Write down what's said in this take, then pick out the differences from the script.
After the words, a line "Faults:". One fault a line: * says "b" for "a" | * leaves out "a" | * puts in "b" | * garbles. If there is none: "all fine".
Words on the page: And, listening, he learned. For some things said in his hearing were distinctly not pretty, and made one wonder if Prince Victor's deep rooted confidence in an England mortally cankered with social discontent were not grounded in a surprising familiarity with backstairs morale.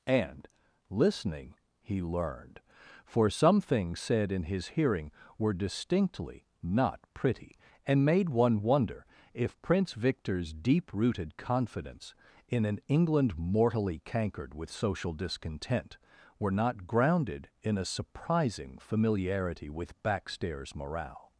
And, listening, he learned. For some things said in his hearing were distinctly not pretty, and made one wonder if Prince Victor's deep rooted confidence in an England mortally cankered with social discontent were not grounded in a surprising familiarity with backstairs morale.
Faults:
all fine